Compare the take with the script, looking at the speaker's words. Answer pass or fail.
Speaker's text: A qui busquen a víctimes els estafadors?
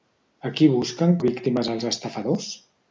pass